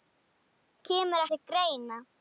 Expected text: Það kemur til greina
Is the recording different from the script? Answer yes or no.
no